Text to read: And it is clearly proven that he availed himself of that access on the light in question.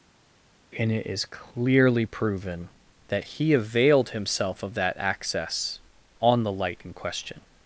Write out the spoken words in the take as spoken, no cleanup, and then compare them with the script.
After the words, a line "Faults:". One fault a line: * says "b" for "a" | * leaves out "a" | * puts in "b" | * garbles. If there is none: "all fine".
And it is clearly proven that he availed himself of that access on the light in question.
Faults:
all fine